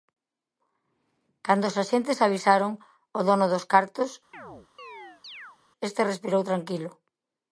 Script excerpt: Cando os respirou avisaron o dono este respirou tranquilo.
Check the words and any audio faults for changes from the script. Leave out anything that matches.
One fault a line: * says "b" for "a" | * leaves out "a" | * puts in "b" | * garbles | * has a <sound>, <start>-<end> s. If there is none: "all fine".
* says "axentes" for "respirou"
* puts in "dos cartos"
* has a chirp, 4.3-5.6 s